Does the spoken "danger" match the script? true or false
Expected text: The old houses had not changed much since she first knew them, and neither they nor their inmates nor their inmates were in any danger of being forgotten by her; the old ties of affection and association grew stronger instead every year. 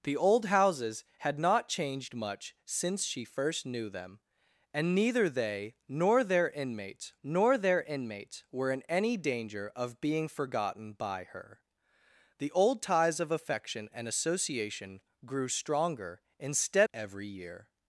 true